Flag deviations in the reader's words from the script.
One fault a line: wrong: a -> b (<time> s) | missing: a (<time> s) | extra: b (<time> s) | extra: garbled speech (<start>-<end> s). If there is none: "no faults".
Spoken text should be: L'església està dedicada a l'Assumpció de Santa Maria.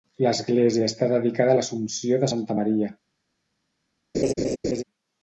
no faults